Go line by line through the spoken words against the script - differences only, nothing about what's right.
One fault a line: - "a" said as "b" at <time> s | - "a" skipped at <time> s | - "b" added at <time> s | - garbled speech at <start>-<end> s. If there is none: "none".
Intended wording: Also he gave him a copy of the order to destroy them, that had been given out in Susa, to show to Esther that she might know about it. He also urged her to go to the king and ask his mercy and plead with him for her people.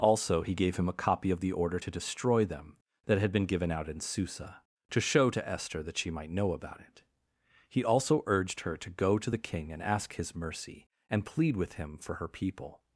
none